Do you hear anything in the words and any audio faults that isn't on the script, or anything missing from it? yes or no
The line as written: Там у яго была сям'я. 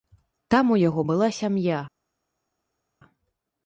no